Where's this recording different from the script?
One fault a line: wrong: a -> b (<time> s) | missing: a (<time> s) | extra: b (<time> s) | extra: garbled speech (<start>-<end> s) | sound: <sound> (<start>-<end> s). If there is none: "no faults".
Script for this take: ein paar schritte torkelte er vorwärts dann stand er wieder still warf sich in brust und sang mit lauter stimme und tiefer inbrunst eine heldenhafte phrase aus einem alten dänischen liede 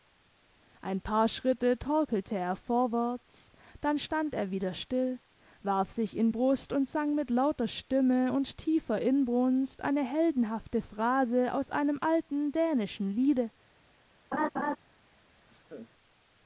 sound: laugh (14.3-14.8 s)
sound: laugh (15.5-15.9 s)